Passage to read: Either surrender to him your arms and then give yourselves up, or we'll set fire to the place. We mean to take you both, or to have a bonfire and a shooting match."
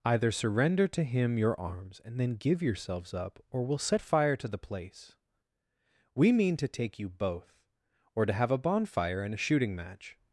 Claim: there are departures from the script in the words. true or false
false